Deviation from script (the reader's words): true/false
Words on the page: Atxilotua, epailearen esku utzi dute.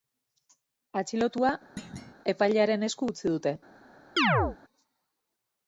false